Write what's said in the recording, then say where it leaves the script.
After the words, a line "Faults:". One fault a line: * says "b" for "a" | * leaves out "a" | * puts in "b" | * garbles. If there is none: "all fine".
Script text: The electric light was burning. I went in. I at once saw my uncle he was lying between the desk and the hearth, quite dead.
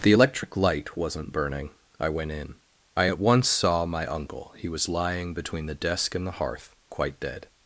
The electric light wasn't burning. I went in. I at once saw my uncle he was lying between the desk and the hearth, quite dead.
Faults:
* says "wasn't" for "was"